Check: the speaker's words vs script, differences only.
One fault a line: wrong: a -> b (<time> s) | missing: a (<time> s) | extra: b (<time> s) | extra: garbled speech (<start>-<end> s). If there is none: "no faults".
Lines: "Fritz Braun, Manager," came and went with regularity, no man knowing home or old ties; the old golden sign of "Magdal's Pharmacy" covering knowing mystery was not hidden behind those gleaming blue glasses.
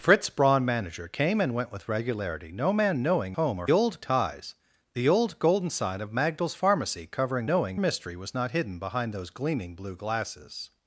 no faults